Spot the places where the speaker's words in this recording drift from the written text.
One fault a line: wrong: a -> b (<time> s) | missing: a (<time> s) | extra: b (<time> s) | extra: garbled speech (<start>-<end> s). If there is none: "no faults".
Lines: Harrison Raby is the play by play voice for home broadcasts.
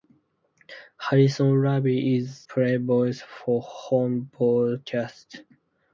missing: the play by (2.5 s)